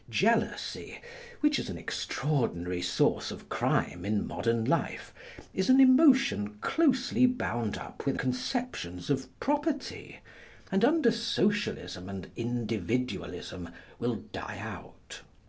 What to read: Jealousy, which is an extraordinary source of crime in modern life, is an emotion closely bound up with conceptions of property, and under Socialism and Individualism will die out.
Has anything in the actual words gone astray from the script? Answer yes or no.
no